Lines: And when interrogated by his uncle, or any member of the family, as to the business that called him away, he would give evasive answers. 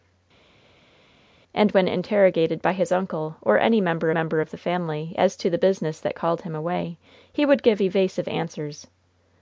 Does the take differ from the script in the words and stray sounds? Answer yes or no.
yes